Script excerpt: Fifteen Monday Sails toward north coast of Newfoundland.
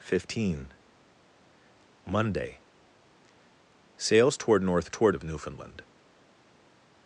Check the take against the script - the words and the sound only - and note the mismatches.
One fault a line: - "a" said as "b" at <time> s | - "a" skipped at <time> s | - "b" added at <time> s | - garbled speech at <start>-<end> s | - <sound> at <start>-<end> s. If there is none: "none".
- "coast" said as "toward" at 4.9 s